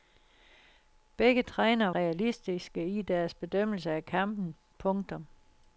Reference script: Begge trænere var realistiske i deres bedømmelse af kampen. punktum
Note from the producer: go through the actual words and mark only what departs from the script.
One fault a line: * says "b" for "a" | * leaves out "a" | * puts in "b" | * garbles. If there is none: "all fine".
* leaves out "var"